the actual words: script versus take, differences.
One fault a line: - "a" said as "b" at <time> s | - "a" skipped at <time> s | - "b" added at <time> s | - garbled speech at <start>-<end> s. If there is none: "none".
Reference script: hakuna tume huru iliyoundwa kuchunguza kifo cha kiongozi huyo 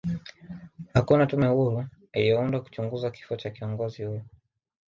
none